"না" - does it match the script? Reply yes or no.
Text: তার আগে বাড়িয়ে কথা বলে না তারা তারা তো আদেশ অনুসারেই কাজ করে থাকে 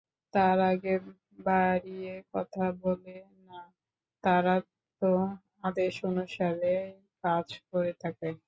yes